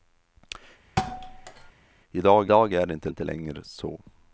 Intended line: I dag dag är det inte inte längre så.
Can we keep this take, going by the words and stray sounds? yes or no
no